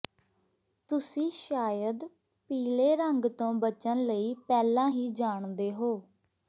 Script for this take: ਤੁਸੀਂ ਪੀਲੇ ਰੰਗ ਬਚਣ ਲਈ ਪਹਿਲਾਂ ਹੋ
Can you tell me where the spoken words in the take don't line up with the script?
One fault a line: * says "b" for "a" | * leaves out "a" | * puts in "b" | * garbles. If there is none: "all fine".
* puts in "ਸ਼ਾਇਦ"
* puts in "ਤੋਂ"
* puts in "ਹੀ ਜਾਣਦੇ"